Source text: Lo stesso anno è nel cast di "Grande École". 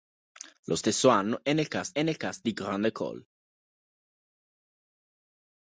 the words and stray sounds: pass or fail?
fail